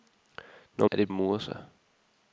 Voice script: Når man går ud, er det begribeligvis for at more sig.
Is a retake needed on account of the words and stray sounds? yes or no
yes